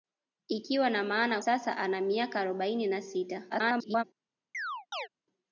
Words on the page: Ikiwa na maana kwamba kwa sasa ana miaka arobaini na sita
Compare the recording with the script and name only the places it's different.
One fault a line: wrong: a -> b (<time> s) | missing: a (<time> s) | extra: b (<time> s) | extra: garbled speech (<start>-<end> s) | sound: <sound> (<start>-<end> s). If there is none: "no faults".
missing: kwamba kwa (1.4 s)
extra: garbled speech (3.5-4.0 s)
sound: chirp (4.5-5.1 s)